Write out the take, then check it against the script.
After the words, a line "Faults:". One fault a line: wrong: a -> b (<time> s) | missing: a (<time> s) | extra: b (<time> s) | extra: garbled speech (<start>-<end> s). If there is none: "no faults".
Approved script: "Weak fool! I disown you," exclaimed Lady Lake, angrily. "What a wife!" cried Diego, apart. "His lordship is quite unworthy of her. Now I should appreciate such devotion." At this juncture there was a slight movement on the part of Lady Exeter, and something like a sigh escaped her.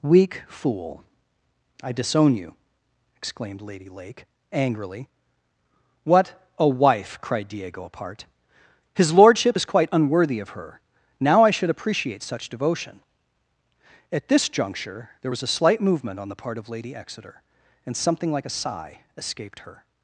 "Weak fool! I disown you," exclaimed Lady Lake, angrily. "What a wife!" cried Diego, apart. "His lordship is quite unworthy of her. Now I should appreciate such devotion." At this juncture there was a slight movement on the part of Lady Exeter, and something like a sigh escaped her.
Faults:
no faults